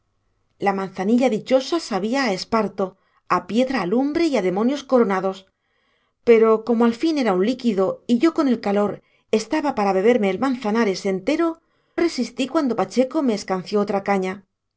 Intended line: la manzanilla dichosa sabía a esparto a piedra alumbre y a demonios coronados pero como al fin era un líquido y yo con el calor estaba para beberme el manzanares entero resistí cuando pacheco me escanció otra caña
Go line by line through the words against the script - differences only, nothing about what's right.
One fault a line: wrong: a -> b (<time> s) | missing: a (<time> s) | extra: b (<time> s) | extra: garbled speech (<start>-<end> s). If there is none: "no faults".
no faults